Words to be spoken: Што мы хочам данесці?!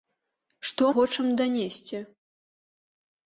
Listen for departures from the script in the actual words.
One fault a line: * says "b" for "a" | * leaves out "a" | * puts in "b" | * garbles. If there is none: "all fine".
* leaves out "мы"